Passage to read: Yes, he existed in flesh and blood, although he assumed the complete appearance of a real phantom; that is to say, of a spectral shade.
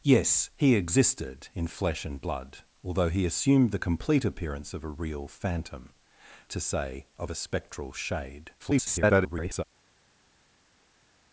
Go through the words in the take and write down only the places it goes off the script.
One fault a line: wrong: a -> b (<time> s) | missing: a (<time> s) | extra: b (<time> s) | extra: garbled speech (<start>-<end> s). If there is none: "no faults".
missing: that is (5.9 s)
extra: garbled speech (8.6-9.6 s)